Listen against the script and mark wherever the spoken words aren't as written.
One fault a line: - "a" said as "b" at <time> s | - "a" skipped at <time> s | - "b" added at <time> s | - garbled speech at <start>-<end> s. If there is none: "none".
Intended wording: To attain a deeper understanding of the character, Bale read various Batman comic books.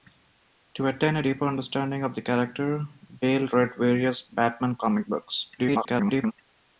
- garbled speech at 5.6-6.3 s